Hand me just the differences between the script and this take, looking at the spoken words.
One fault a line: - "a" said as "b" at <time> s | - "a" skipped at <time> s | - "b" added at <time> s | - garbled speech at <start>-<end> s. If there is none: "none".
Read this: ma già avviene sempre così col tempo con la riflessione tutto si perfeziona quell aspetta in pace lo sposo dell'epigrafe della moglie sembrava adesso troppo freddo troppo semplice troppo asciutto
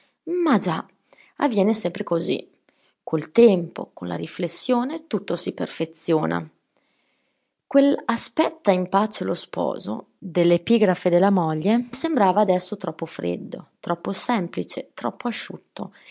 none